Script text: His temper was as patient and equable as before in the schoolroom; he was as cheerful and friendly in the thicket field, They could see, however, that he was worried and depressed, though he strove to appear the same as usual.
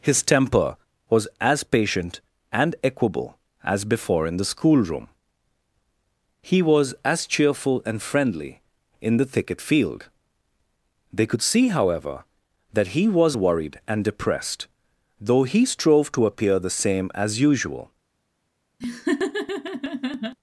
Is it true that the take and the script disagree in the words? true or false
false